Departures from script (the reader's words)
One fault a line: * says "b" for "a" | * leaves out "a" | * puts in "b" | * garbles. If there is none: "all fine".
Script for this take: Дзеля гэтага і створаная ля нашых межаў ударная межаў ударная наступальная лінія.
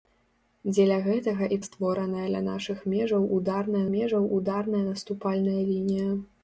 all fine